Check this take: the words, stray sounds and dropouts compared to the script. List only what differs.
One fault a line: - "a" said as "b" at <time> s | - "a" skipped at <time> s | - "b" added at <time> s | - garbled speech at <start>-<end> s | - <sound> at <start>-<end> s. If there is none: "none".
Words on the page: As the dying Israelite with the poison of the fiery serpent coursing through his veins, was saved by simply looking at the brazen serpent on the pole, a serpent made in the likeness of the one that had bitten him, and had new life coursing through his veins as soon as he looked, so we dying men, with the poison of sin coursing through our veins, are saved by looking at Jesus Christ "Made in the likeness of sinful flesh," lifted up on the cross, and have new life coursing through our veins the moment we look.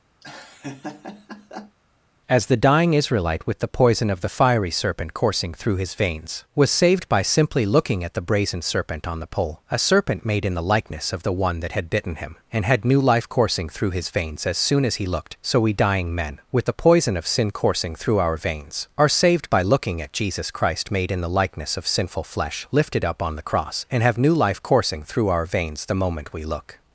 - laugh at 0.2-1.8 s